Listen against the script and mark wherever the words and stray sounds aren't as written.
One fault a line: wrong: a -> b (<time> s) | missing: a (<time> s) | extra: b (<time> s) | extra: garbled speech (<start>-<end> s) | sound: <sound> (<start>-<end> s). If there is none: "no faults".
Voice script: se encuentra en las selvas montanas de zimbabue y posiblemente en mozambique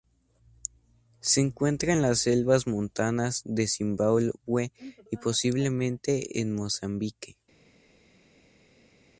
no faults